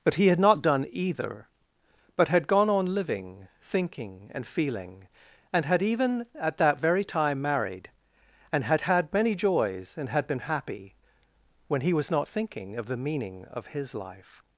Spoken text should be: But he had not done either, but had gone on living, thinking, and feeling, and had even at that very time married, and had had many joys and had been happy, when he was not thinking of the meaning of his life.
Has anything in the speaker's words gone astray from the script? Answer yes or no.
no